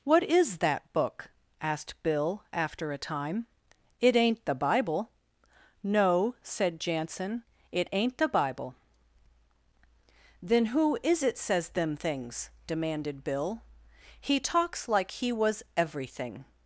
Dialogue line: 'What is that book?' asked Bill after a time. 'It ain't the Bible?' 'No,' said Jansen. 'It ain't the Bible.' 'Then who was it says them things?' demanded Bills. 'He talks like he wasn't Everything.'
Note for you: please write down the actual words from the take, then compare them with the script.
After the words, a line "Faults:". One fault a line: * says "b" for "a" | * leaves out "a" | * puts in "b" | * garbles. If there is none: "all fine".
'What is that book?' asked Bill after a time. 'It ain't the Bible?' 'No,' said Jansen. 'It ain't the Bible.' 'Then who is it says them things?' demanded Bill. 'He talks like he was Everything.'
Faults:
* says "is" for "was"
* says "Bill" for "Bills"
* says "was" for "wasn't"